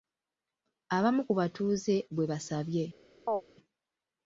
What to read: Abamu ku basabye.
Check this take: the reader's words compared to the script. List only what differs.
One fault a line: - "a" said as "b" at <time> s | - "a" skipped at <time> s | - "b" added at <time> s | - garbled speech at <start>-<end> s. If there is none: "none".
- "batuuze bwe" added at 1.4 s